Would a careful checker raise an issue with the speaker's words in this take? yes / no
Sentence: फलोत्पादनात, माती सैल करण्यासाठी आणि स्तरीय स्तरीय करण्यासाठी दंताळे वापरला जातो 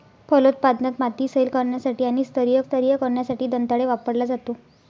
no